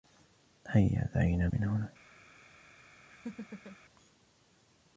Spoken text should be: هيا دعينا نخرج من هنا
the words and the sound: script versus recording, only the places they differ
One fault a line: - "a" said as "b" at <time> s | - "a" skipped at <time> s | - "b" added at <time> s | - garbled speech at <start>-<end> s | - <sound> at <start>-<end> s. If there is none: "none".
- "نخرج" skipped at 1.5 s
- laugh at 3.1-3.8 s